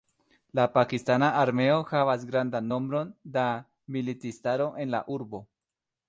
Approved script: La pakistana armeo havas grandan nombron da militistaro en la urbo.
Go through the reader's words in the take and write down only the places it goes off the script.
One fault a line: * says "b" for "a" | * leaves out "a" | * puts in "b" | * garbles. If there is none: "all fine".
all fine